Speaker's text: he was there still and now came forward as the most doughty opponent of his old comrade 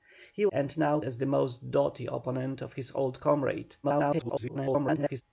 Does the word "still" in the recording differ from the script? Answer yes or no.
yes